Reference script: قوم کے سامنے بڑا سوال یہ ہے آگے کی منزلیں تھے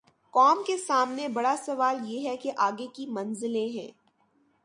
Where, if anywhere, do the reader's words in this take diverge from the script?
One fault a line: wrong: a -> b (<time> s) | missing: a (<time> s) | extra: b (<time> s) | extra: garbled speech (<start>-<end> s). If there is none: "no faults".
extra: کہ (2.4 s)
wrong: تھے -> ہیں (3.7 s)